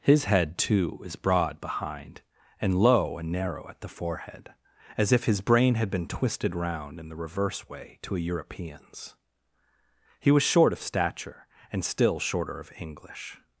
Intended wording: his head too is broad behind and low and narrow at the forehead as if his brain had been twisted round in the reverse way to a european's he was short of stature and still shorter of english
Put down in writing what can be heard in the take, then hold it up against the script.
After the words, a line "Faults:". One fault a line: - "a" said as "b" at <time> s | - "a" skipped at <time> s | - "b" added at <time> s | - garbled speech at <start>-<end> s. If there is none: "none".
his head too is broad behind and low and narrow at the forehead as if his brain had been twisted round in the reverse way to a european's he was short of stature and still shorter of english
Faults:
none